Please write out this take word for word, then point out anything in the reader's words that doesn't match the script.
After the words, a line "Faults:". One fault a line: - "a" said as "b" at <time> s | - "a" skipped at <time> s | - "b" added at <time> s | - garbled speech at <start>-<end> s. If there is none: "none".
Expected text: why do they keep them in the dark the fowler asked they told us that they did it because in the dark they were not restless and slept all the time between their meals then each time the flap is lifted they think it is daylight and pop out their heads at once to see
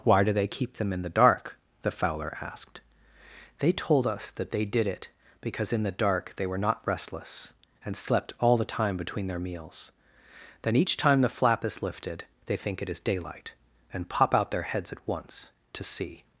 why do they keep them in the dark the fowler asked they told us that they did it because in the dark they were not restless and slept all the time between their meals then each time the flap is lifted they think it is daylight and pop out their heads at once to see
Faults:
none